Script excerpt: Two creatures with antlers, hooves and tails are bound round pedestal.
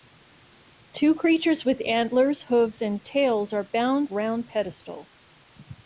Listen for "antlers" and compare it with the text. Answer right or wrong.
right